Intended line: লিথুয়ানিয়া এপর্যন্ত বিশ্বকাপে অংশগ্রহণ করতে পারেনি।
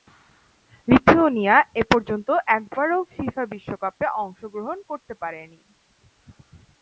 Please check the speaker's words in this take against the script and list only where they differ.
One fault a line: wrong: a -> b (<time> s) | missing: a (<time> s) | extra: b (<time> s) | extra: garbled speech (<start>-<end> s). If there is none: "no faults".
extra: একবারও ফিফা (2.6 s)